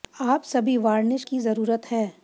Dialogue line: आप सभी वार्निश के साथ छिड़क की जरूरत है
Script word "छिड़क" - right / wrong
wrong